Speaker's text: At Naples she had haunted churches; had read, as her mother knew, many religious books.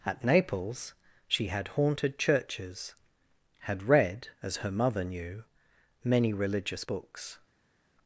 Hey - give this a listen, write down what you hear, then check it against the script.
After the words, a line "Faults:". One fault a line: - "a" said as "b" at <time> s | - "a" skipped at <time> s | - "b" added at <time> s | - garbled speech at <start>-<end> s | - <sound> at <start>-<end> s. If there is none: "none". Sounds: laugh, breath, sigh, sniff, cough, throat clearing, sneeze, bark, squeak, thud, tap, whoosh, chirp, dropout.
At Naples she had haunted churches; had read, as her mother knew, many religious books.
Faults:
none